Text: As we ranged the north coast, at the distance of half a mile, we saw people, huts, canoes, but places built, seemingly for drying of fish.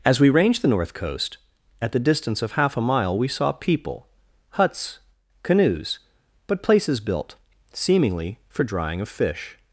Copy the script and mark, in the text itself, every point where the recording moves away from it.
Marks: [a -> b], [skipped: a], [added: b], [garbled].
As we ranged the north coast, at the distance of half a mile, we saw people, huts, canoes, but places built, seemingly for drying of fish.